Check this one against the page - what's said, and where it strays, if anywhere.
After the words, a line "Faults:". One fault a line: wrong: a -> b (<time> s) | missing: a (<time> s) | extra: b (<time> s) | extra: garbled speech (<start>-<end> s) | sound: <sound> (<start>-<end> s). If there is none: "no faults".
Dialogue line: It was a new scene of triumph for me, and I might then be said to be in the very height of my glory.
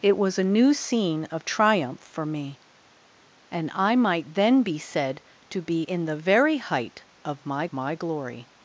It was a new scene of triumph for me, and I might then be said to be in the very height of my my glory.
Faults:
extra: my (7.7 s)